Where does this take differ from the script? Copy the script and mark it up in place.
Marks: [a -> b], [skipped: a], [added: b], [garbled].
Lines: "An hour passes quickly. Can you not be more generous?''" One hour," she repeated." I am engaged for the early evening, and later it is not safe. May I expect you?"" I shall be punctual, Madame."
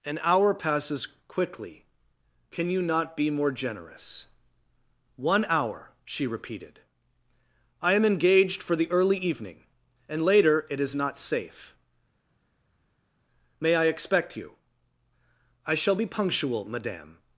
"An hour passes quickly. Can you not be more generous?''" One hour," she repeated." I am engaged for the early evening, and later it is not safe. May I expect you?"" I shall be punctual, Madame."